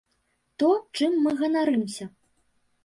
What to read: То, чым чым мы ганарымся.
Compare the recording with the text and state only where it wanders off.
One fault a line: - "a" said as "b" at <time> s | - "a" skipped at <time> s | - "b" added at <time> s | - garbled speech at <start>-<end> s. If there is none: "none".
- "чым" skipped at 1.2 s